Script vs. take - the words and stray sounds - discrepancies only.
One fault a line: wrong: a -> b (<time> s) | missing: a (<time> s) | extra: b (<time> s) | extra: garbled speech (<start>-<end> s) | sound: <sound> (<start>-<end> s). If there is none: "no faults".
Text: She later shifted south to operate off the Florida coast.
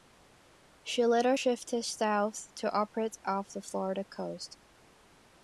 no faults